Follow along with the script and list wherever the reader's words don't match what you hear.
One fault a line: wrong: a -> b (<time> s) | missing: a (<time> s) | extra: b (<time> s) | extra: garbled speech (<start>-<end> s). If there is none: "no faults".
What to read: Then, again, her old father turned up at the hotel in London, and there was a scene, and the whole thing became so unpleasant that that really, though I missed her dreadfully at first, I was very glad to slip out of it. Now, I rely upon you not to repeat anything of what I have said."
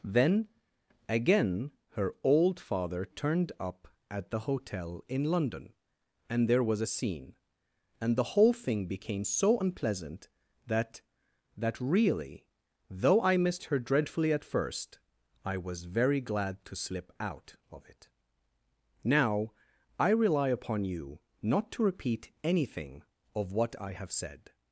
no faults